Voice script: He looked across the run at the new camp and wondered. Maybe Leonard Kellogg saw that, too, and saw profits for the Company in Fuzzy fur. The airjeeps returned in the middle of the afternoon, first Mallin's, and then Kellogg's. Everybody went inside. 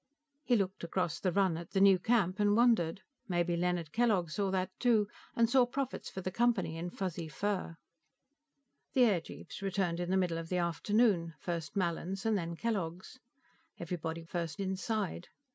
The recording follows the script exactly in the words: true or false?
false